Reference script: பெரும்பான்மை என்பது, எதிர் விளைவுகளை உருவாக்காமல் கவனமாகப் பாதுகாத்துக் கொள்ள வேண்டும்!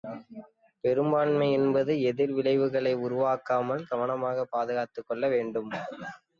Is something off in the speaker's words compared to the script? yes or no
no